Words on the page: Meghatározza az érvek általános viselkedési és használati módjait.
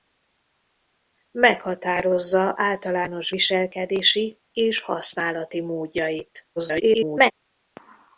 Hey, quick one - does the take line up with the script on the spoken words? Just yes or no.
no